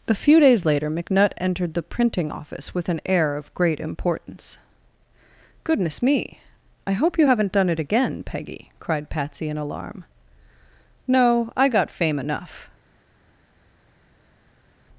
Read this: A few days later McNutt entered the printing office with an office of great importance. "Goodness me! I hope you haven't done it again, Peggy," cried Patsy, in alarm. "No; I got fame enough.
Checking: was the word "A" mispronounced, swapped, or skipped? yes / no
no